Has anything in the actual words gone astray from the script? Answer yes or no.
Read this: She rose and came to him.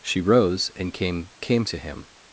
yes